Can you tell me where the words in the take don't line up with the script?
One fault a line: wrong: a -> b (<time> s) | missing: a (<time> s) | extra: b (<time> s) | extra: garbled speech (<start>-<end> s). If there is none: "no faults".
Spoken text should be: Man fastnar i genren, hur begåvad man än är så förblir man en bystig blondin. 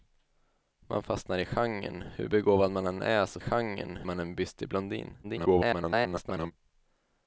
wrong: förblir -> genren (3.4 s)
extra: garbled speech (5.2-6.5 s)